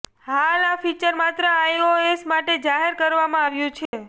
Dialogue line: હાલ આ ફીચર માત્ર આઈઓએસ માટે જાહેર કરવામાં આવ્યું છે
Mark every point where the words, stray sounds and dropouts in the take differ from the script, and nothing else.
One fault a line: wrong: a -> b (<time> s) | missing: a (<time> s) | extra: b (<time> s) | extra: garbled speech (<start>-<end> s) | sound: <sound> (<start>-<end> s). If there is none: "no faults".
sound: dropout (3.9-3.9 s)